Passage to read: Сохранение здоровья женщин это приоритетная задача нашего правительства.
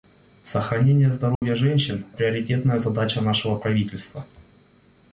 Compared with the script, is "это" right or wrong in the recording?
wrong